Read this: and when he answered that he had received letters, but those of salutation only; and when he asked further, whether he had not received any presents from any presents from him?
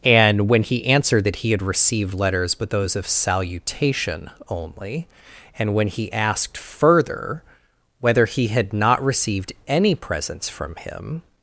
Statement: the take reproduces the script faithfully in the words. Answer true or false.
false